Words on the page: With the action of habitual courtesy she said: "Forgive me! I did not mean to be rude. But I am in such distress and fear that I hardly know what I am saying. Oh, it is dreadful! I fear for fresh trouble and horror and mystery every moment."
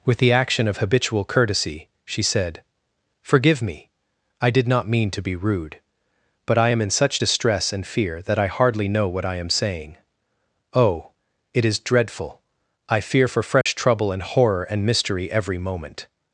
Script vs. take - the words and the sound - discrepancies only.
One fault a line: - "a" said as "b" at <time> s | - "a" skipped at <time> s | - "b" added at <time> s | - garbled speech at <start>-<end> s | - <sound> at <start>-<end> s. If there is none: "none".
- dropout at 13.6-13.7 s